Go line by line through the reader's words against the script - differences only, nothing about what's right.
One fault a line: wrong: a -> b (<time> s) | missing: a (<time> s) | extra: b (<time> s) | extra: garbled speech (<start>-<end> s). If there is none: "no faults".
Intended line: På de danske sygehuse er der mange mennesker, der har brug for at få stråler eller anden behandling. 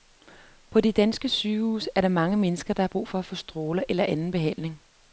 no faults